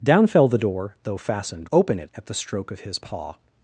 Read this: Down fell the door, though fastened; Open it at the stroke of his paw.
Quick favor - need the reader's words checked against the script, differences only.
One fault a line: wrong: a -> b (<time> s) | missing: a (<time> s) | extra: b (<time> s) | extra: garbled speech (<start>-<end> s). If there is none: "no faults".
no faults